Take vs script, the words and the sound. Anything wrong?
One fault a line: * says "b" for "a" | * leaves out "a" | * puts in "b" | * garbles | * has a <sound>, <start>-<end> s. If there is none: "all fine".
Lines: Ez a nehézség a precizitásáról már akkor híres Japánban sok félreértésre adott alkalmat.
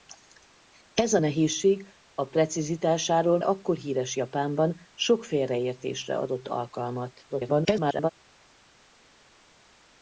* leaves out "már"
* garbles